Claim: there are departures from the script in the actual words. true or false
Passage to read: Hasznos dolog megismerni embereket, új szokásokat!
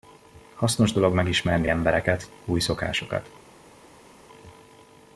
false